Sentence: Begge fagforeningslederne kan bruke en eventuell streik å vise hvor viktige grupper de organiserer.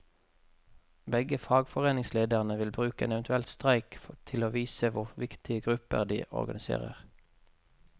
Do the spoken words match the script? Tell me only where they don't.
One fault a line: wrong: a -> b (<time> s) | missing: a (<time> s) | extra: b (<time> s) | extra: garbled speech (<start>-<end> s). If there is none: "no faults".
wrong: kan -> vil (2.6 s)
extra: til (4.2 s)